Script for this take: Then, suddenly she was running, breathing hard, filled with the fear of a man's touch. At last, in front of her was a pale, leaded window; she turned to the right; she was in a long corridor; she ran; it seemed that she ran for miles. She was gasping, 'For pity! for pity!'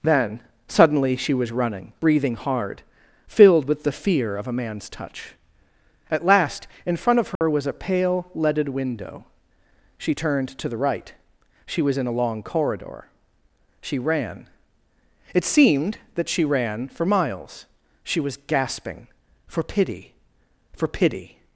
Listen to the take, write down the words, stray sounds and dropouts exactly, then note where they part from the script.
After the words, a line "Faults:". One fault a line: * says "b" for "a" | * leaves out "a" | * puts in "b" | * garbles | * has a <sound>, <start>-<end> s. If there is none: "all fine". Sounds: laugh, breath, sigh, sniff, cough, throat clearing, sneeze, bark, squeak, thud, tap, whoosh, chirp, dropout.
Then, suddenly she was running, breathing hard, filled with the fear of a man's touch. At last, in front of her was a pale, leaded window; she turned to the right; she was in a long corridor; she ran; it seemed that she ran for miles. She was gasping, 'For pity! for pity!'
Faults:
* has a dropout, 7.4-7.4 s